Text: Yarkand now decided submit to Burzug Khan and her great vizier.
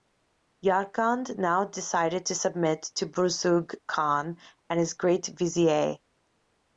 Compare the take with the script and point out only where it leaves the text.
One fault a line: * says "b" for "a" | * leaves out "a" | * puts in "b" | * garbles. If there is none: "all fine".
* puts in "to"
* says "his" for "her"